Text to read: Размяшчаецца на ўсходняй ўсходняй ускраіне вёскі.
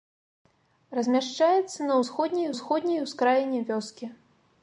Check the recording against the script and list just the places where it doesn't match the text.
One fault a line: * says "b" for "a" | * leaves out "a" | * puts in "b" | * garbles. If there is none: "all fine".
all fine